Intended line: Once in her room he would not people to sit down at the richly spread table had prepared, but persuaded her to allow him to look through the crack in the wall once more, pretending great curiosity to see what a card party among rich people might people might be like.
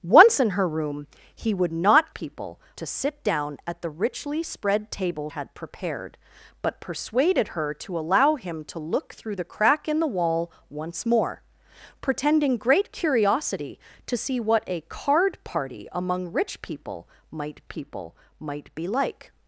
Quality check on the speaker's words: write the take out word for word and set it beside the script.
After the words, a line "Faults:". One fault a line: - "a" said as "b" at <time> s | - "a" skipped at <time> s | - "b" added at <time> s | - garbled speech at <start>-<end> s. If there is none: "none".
Once in her room he would not people to sit down at the richly spread table had prepared, but persuaded her to allow him to look through the crack in the wall once more, pretending great curiosity to see what a card party among rich people might people might be like.
Faults:
none